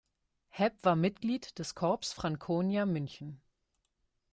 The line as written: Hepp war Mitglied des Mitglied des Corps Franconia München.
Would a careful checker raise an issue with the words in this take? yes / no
yes